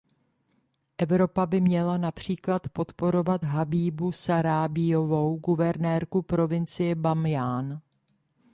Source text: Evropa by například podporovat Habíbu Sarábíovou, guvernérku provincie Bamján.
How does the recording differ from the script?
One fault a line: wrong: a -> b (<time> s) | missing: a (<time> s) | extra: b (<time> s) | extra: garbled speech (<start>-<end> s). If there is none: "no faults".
extra: měla (1.6 s)